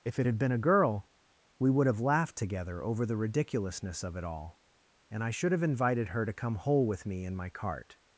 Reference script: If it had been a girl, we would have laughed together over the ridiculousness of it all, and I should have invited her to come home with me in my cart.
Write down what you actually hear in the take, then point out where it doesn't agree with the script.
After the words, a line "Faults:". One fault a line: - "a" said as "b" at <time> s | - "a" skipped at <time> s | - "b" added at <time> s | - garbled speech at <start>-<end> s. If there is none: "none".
If it had been a girl, we would have laughed together over the ridiculousness of it all, and I should have invited her to come hole with me in my cart.
Faults:
- "home" said as "hole" at 6.5 s